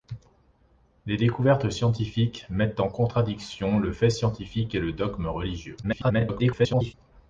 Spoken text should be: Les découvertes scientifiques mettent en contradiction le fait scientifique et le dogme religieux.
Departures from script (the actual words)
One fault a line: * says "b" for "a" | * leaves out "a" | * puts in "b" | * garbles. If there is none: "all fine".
* garbles